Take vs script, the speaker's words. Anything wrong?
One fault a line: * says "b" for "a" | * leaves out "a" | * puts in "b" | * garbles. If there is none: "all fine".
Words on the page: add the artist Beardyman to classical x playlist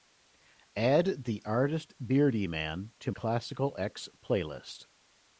all fine